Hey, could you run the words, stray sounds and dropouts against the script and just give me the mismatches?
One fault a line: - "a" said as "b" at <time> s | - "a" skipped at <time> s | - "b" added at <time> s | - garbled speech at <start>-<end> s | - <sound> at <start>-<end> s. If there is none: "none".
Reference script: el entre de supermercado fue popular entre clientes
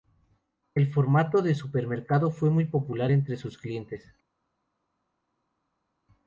- "entre" said as "formato" at 0.9 s
- "muy" added at 2.5 s
- "sus" added at 3.3 s